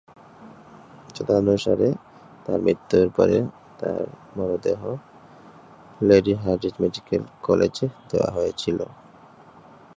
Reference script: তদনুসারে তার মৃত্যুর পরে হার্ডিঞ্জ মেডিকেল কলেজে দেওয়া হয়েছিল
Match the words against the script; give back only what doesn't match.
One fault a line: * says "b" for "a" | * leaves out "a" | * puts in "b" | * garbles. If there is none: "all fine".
* puts in "তার মরদেহ লেডি"